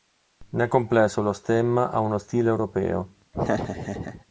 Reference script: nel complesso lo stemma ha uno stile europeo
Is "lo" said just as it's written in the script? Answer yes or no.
yes